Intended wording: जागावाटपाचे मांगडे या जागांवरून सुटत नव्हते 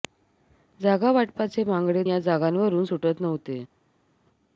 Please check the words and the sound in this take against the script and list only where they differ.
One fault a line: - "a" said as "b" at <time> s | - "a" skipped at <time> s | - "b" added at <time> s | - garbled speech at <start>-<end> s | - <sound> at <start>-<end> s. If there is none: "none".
none